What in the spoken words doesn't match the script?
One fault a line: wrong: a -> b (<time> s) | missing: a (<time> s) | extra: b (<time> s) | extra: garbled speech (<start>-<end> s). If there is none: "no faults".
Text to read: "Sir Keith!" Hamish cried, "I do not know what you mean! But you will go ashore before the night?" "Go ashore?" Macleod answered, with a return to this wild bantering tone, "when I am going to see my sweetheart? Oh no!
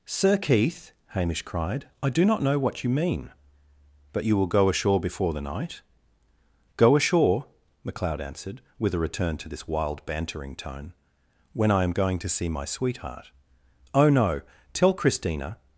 extra: Tell Christina (14.7 s)